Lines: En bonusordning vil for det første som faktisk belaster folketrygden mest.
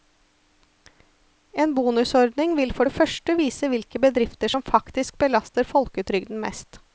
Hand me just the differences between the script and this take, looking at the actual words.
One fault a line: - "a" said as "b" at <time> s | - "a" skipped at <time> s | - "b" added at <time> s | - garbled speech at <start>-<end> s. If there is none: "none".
- "vise hvilke bedrifter" added at 3.4 s